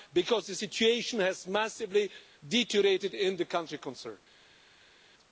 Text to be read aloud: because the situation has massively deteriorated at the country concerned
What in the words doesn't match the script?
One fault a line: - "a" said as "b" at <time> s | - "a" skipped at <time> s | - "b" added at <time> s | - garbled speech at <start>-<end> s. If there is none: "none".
- "at" said as "in" at 3.1 s